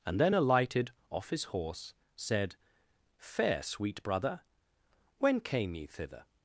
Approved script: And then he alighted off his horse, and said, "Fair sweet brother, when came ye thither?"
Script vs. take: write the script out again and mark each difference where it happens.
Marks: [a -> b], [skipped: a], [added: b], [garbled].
And then [skipped: he] alighted off his horse, [skipped: and] said, "Fair sweet brother, when came ye thither?"